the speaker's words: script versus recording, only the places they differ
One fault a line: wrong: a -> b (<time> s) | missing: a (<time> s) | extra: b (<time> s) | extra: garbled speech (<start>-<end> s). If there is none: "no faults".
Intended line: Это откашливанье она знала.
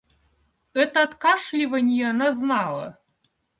no faults